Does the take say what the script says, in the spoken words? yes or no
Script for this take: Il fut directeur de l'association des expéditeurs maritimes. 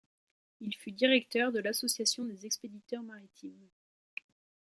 yes